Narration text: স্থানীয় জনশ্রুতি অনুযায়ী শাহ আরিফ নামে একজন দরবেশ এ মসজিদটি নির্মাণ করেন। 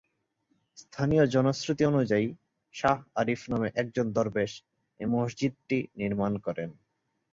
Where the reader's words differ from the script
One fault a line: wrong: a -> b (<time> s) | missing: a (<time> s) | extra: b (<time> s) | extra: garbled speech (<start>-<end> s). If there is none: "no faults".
no faults